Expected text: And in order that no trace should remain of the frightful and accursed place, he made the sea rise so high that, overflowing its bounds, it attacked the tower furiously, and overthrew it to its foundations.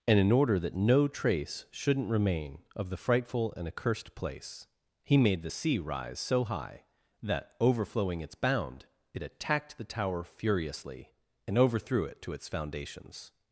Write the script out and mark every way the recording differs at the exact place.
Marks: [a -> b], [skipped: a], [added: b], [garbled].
And in order that no trace [should -> shouldn't] remain of the frightful and accursed place, he made the sea rise so high that, overflowing its [bounds, -> bound] it attacked the tower furiously, and overthrew it to its foundations.